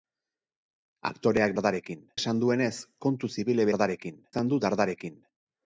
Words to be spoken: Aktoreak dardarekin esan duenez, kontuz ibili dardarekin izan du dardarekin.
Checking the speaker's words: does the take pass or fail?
pass